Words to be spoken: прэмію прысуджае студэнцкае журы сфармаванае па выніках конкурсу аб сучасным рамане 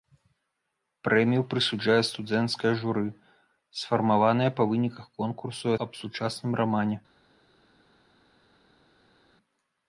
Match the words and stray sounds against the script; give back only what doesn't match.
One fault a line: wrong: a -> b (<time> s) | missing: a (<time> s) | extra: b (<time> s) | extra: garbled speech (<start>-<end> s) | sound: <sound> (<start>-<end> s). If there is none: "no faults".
no faults